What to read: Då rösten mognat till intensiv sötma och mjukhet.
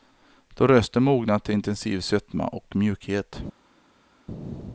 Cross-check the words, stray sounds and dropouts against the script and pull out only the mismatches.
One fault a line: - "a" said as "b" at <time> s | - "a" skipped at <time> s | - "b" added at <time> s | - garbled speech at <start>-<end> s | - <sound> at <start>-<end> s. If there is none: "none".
none